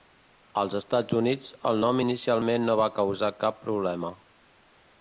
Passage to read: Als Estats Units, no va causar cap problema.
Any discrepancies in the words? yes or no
yes